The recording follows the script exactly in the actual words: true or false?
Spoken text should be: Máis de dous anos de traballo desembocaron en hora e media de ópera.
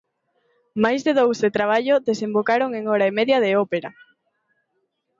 false